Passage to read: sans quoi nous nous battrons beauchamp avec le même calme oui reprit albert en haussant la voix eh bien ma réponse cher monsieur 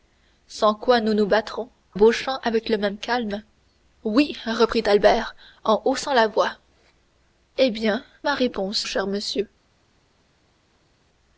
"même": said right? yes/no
yes